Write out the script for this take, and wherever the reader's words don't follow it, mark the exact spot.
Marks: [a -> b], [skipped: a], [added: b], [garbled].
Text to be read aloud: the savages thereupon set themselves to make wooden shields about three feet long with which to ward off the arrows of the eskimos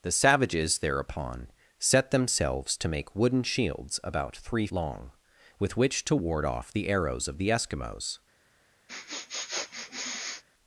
the savages thereupon set themselves to make wooden shields about three [skipped: feet] long with which to ward off the arrows of the eskimos